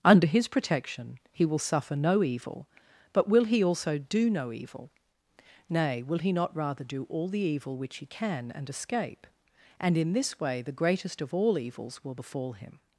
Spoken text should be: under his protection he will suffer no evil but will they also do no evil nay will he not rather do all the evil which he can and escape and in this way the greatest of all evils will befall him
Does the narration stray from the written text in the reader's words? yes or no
yes